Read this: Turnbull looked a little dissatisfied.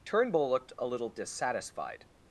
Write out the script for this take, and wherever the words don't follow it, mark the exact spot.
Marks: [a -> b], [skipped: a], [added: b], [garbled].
Turnbull looked a little dissatisfied.